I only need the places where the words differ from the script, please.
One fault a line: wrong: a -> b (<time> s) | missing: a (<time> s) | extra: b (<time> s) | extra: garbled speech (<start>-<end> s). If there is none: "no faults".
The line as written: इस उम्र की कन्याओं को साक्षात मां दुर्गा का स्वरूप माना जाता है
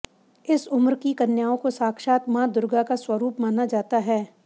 no faults